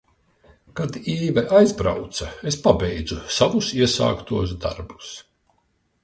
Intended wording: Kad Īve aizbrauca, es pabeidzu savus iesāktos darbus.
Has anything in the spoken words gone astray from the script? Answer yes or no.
no